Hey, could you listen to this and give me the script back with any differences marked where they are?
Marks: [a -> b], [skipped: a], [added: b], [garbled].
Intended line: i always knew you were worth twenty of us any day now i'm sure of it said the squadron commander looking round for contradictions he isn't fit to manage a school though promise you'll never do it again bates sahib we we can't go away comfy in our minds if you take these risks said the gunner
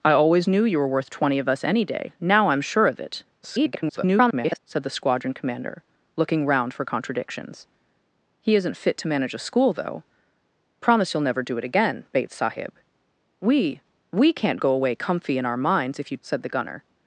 i always knew you were worth twenty of us any day now i'm sure of it [garbled] said the squadron commander looking round for contradictions he isn't fit to manage a school though promise you'll never do it again bates sahib we we can't go away comfy in our minds if you [skipped: take these risks] said the gunner